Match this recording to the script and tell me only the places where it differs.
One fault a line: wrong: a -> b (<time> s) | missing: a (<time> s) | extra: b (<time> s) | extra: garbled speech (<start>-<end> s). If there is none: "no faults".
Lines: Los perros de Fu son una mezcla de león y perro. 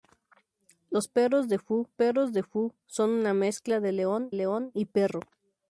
extra: perros de Fu (1.9 s)
extra: león (4.3 s)